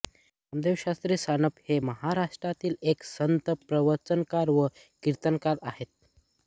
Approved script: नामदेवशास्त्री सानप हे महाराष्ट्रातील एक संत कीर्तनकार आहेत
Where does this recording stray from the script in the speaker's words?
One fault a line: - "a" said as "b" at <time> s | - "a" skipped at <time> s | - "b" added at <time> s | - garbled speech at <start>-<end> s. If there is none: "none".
- "प्रवचनकार व" added at 3.7 s